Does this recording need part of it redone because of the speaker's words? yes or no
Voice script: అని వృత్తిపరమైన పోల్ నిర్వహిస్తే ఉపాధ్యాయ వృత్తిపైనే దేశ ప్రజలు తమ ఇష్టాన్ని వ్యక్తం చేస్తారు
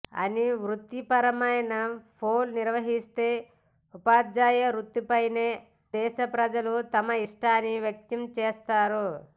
no